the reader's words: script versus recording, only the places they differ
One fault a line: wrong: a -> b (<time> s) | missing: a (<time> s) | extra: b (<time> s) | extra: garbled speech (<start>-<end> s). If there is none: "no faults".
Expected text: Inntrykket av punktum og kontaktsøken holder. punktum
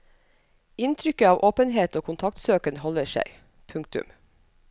wrong: punktum -> åpenhet (1.5 s)
extra: seg (3.2 s)